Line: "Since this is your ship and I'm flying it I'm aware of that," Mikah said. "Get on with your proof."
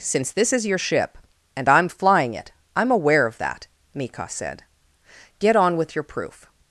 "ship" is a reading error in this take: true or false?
false